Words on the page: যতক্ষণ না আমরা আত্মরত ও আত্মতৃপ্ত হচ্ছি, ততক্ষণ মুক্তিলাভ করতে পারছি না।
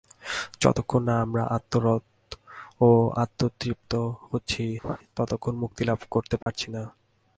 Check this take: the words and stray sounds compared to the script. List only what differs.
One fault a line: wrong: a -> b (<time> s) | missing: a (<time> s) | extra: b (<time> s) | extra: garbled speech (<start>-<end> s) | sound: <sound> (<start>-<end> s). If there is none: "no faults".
sound: laugh (4.8-5.0 s)
sound: dropout (6.4-6.5 s)